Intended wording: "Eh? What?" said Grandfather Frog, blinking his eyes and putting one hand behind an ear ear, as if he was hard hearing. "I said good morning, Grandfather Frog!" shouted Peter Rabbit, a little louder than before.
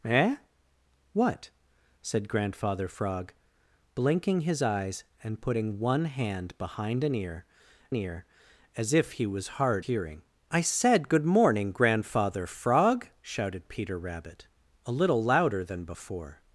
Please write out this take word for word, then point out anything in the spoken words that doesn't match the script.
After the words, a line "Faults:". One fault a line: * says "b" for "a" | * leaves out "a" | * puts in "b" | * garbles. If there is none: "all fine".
"Eh? What?" said Grandfather Frog, blinking his eyes and putting one hand behind an ear ear, as if he was hard hearing. "I said good morning, Grandfather Frog!" shouted Peter Rabbit, a little louder than before.
Faults:
all fine